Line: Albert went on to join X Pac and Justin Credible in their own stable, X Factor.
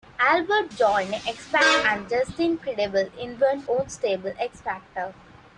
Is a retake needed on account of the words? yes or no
yes